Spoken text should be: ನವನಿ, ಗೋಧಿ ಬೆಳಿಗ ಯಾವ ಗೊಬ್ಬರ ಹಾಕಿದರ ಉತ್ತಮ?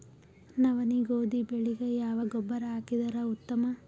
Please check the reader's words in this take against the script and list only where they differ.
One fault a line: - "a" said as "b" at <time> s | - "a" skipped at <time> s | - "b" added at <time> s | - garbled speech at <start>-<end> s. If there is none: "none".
none